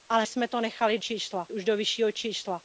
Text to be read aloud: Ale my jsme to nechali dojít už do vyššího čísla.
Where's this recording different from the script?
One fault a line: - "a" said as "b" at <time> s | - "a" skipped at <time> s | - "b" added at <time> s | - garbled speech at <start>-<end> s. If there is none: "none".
- "my" skipped at 0.2 s
- "dojít" said as "čísla" at 1.0 s